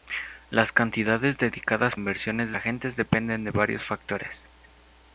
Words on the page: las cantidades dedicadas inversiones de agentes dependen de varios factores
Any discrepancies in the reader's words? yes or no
no